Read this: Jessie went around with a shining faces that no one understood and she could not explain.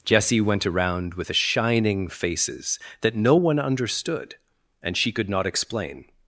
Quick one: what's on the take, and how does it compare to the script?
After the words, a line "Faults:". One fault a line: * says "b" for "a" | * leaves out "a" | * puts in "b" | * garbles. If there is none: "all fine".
Jessie went around with a shining faces that no one understood and she could not explain.
Faults:
all fine